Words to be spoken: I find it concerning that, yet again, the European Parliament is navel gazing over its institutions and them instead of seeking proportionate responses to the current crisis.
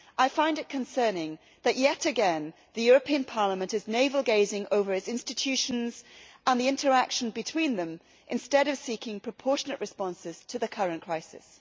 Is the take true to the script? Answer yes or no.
no